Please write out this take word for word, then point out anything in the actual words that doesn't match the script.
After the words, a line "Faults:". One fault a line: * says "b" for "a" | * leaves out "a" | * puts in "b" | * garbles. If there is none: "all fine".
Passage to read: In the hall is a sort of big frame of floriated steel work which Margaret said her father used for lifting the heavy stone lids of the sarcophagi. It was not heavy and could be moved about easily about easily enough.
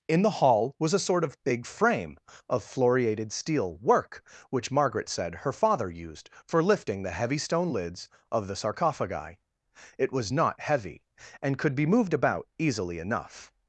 In the hall was a sort of big frame of floriated steel work which Margaret said her father used for lifting the heavy stone lids of the sarcophagi. It was not heavy and could be moved about easily enough.
Faults:
* says "was" for "is"
* leaves out "about easily"